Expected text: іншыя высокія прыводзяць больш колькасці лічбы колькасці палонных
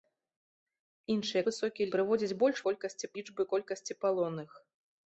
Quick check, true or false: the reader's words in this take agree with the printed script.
true